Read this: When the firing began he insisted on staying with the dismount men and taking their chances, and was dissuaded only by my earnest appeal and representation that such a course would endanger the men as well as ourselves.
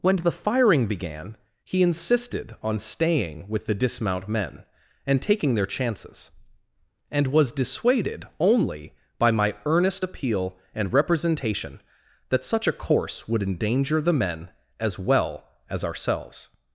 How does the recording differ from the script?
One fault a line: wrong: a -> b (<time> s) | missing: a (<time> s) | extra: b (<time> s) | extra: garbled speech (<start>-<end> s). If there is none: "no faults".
no faults